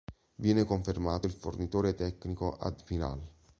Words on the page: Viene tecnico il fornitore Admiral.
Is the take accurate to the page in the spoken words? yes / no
no